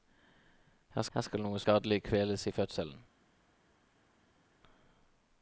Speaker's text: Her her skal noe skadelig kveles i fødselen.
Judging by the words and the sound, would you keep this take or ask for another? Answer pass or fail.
pass